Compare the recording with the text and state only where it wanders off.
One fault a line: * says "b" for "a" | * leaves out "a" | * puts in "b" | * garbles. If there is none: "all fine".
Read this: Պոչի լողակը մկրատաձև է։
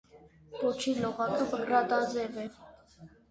all fine